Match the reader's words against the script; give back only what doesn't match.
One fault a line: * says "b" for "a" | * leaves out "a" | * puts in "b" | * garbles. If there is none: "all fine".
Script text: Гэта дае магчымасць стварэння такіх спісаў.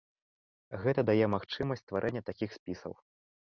all fine